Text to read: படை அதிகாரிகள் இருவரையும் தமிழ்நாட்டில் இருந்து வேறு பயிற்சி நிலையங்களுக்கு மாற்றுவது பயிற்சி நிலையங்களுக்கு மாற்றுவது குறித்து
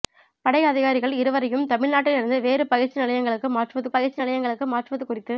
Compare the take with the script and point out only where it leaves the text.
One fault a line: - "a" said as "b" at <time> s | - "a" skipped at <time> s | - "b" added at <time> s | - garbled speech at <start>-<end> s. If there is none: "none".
none